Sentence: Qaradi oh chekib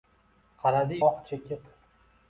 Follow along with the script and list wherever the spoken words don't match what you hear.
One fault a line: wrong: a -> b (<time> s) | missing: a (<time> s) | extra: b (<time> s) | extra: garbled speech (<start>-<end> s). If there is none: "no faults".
no faults